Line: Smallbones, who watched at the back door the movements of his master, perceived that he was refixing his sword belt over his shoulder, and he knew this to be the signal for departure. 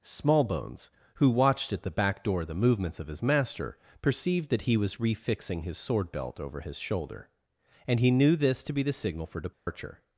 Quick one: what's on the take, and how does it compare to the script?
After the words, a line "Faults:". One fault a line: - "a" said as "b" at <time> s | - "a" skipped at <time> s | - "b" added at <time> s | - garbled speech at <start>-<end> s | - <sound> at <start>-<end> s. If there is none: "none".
Smallbones, who watched at the back door the movements of his master, perceived that he was refixing his sword belt over his shoulder, and he knew this to be the signal for departure.
Faults:
- dropout at 9.5-9.7 s